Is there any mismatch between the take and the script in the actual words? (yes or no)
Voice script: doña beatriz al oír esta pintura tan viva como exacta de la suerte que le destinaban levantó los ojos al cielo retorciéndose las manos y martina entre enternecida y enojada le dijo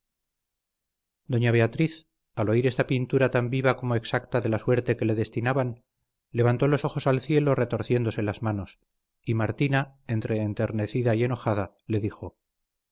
no